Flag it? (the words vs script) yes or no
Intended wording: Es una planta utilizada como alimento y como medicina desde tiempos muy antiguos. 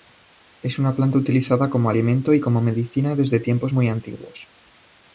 no